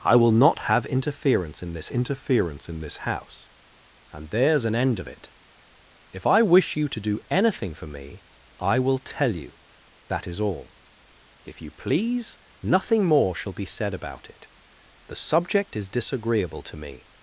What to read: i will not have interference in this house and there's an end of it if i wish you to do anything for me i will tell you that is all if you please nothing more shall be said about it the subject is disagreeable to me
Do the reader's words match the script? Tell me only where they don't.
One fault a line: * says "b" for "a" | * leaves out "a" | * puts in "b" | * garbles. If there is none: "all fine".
* puts in "interference in this"